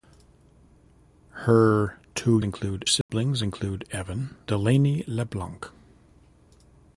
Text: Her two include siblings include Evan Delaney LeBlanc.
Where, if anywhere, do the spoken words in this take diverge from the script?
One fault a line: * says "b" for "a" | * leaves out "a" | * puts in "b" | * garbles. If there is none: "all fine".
all fine